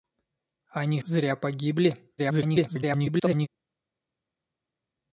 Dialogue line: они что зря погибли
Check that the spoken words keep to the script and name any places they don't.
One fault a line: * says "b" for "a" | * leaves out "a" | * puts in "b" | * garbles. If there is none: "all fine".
* leaves out "что"
* garbles